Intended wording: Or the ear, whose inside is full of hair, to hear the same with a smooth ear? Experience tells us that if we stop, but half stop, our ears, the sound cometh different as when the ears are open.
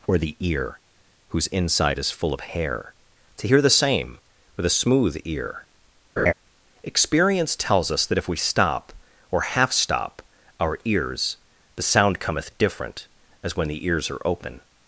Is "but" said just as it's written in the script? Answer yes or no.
no